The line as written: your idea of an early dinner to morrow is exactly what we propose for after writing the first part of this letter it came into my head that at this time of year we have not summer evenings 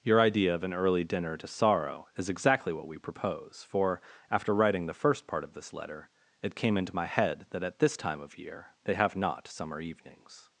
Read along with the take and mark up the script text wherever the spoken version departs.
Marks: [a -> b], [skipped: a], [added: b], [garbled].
your idea of an early dinner to [morrow -> sorrow] is exactly what we propose for after writing the first part of this letter it came into my head that at this time of year [we -> they] have not summer evenings